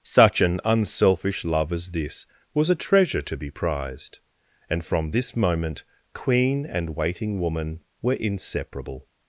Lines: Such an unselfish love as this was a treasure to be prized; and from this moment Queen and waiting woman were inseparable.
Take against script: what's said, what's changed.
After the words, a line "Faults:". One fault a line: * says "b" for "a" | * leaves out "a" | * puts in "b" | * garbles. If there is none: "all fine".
Such an unselfish love as this was a treasure to be prized; and from this moment Queen and waiting woman were inseparable.
Faults:
all fine